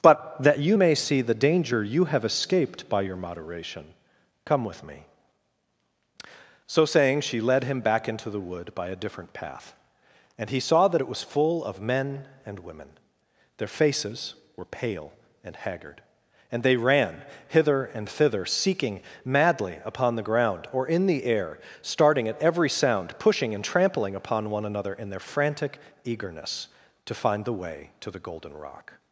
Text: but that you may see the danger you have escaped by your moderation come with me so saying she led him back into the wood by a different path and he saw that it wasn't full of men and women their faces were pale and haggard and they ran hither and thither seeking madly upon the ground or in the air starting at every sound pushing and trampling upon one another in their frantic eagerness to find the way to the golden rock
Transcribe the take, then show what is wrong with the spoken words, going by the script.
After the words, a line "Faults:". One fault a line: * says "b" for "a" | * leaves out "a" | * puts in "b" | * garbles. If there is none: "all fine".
but that you may see the danger you have escaped by your moderation come with me so saying she led him back into the wood by a different path and he saw that it was full of men and women their faces were pale and haggard and they ran hither and thither seeking madly upon the ground or in the air starting at every sound pushing and trampling upon one another in their frantic eagerness to find the way to the golden rock
Faults:
* says "was" for "wasn't"